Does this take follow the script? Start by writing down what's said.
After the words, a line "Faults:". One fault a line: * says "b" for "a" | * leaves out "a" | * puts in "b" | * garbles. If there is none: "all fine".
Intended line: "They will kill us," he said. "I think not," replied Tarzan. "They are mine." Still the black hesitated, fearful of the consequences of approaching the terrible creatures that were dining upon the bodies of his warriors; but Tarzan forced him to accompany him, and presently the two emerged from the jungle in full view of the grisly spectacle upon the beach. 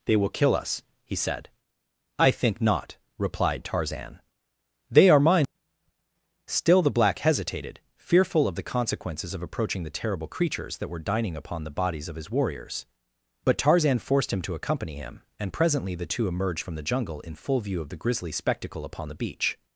"They will kill us," he said. "I think not," replied Tarzan. "They are mine." Still the black hesitated, fearful of the consequences of approaching the terrible creatures that were dining upon the bodies of his warriors; but Tarzan forced him to accompany him, and presently the two emerged from the jungle in full view of the grisly spectacle upon the beach.
Faults:
all fine